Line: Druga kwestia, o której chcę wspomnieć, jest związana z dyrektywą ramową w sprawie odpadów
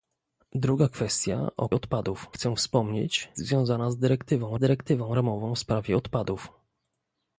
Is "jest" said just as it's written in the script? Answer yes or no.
no